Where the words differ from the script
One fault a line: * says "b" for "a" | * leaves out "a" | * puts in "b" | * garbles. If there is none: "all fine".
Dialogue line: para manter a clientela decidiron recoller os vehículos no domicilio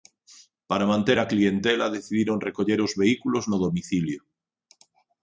all fine